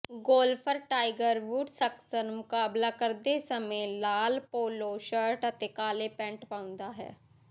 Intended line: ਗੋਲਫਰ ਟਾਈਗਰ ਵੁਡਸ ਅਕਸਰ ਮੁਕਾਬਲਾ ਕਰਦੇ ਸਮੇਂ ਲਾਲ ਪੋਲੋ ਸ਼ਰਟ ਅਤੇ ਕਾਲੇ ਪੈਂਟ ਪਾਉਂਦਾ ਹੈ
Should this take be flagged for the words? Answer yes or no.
no